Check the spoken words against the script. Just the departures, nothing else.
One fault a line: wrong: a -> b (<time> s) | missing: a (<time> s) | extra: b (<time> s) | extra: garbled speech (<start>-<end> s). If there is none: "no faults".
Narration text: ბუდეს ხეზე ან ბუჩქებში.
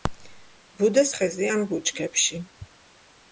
no faults